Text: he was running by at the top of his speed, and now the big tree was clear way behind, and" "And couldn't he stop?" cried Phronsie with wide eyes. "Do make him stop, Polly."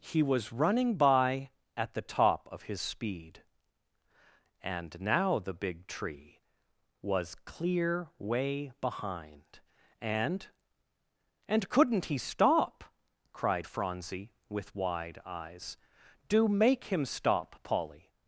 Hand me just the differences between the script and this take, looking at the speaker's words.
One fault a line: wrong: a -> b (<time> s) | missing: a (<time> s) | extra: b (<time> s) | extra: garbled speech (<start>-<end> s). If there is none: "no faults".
no faults